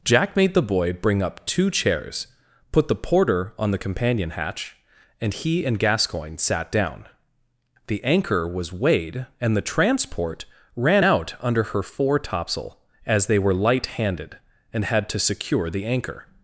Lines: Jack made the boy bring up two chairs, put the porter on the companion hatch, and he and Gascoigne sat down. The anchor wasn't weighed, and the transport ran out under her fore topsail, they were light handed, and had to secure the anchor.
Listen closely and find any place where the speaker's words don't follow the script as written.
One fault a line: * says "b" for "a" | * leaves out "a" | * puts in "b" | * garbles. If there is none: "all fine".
* says "was" for "wasn't"
* puts in "as"